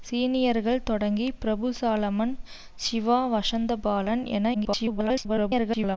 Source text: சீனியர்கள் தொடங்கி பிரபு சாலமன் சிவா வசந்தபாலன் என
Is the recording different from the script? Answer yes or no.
yes